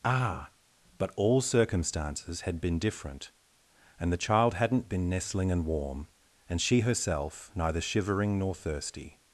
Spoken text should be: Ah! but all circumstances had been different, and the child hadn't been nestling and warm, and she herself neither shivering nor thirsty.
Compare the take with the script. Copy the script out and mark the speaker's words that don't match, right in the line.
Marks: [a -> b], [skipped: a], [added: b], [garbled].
Ah! but all circumstances had been different, and the child hadn't been nestling and warm, and she herself neither shivering nor thirsty.